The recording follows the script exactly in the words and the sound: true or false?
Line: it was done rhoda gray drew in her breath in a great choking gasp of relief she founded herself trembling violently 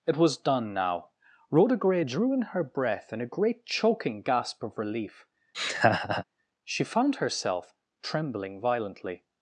false